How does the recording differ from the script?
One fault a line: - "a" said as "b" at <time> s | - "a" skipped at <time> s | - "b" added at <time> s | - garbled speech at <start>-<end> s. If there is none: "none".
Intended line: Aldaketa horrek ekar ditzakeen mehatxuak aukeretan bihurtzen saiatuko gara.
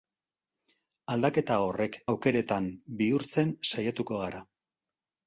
- "ekar ditzakeen mehatxuak" skipped at 2.0 s